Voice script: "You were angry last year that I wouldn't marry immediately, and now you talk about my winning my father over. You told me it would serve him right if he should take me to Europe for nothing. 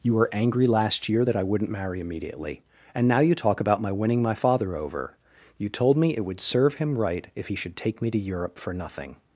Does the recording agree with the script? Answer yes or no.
yes